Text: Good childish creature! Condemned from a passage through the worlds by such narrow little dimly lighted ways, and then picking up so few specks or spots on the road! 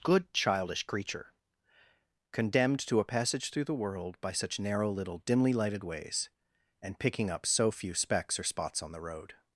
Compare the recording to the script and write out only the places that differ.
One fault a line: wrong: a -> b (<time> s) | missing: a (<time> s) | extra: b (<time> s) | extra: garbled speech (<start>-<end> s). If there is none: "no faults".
wrong: from -> to (2.9 s)
wrong: worlds -> world (3.8 s)
missing: then (7.0 s)